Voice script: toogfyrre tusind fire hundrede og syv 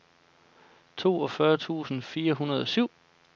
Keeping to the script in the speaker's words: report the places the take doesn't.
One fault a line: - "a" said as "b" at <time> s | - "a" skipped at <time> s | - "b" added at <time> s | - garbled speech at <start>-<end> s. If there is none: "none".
none